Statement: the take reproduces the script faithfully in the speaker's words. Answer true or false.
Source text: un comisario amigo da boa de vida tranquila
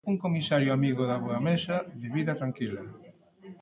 false